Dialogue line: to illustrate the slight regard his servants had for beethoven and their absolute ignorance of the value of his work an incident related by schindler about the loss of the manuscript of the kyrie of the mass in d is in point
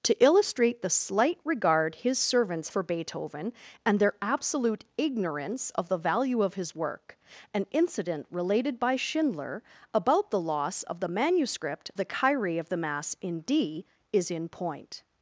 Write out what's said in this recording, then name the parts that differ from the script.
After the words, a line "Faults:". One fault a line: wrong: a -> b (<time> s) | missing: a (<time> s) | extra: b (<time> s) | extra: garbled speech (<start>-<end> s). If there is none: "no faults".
to illustrate the slight regard his servants for beethoven and their absolute ignorance of the value of his work an incident related by schindler about the loss of the manuscript the kyrie of the mass in d is in point
Faults:
missing: had (2.7 s)
missing: of (11.9 s)